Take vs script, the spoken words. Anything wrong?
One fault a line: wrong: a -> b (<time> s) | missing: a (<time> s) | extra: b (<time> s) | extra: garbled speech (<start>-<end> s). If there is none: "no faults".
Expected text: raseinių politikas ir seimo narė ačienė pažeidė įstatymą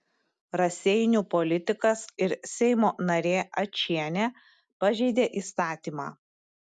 no faults